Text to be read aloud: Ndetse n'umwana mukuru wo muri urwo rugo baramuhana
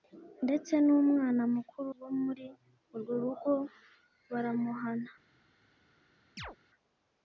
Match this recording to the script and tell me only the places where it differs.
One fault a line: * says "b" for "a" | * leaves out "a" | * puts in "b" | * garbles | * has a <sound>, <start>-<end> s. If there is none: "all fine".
* has a chirp, 6.4-6.6 s